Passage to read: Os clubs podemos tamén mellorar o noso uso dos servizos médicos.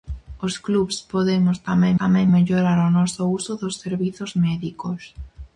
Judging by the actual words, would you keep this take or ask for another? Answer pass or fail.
fail